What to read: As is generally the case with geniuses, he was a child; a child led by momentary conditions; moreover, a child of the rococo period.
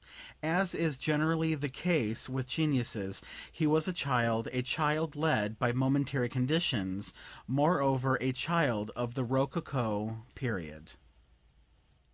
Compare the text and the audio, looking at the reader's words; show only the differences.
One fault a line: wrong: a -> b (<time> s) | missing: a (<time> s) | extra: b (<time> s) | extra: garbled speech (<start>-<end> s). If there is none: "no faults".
no faults